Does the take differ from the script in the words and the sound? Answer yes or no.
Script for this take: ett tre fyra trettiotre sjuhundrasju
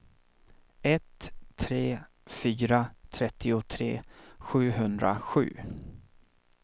no